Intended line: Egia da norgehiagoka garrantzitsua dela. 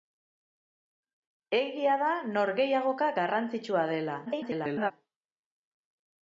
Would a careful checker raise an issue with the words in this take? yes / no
yes